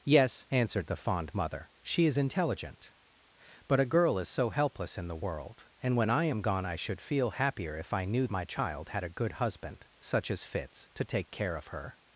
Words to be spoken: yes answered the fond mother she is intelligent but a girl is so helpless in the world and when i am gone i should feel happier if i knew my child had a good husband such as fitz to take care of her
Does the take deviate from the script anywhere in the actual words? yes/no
no